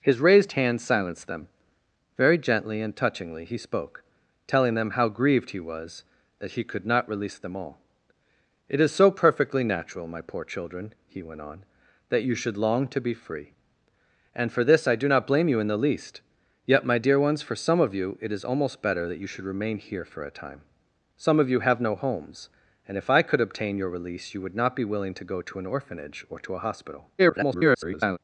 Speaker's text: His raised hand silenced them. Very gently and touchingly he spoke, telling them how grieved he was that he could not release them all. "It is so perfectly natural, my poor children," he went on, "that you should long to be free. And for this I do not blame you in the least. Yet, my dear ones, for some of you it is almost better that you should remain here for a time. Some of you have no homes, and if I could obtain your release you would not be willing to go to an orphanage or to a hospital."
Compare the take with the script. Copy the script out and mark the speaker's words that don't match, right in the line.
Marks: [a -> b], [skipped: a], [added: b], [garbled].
His raised hand silenced them. Very gently and touchingly he spoke, telling them how grieved he was that he could not release them all. "It is so perfectly natural, my poor children," he went on, "that you should long to be free. And for this I do not blame you in the least. Yet, my dear ones, for some of you it is almost better that you should remain here for a time. Some of you have no homes, and if I could obtain your release you would not be willing to go to an orphanage or to a hospital." [garbled]